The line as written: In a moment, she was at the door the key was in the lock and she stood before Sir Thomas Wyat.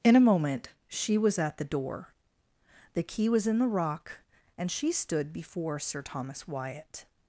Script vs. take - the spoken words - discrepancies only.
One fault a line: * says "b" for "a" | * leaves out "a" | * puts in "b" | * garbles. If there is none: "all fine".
* says "rock" for "lock"